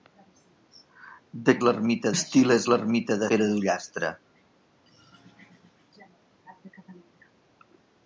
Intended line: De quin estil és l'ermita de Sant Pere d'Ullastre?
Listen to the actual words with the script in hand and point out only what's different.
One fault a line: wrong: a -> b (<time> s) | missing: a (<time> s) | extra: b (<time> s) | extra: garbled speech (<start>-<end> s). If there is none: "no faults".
wrong: quin -> l'ermita (1.7 s)
missing: Sant (3.3 s)